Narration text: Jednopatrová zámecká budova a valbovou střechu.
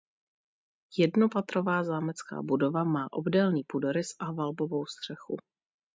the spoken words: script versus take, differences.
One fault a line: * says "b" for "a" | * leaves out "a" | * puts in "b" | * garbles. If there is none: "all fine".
* puts in "má obdélný půdorys"